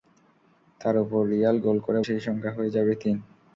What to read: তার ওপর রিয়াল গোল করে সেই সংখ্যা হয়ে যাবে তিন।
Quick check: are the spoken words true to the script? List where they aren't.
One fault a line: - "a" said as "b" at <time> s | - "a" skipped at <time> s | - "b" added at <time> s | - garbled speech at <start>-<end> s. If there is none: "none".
none